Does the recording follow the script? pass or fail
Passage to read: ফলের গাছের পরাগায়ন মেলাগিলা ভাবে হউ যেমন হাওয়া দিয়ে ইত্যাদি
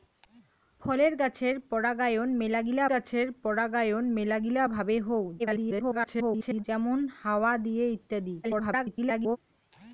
fail